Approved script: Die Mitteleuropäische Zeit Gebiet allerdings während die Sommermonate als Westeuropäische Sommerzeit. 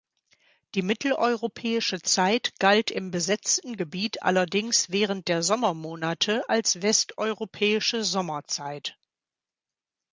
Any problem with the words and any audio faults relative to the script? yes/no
yes